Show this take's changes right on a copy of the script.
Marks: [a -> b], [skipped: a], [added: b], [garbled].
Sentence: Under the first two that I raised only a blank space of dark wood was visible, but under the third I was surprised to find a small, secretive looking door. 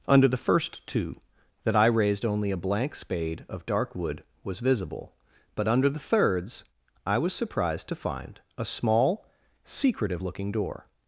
Under the first two that I raised only a blank [space -> spade] of dark wood was visible, but under the [third -> thirds] I was surprised to find a small, secretive looking door.